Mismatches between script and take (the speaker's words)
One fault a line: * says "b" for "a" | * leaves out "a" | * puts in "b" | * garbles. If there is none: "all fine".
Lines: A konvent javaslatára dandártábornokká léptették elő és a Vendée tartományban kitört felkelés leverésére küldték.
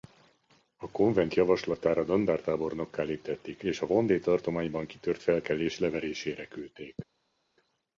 * leaves out "elő"